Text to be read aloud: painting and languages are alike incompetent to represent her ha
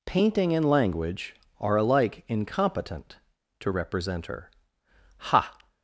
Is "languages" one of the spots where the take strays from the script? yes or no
yes